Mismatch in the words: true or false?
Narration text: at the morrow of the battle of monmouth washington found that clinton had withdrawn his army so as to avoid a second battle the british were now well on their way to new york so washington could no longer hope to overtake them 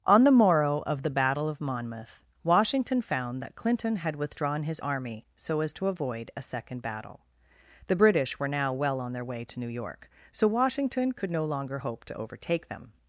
true